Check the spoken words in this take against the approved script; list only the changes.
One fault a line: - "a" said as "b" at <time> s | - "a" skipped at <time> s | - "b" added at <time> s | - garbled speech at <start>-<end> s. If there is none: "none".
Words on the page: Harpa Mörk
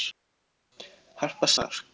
none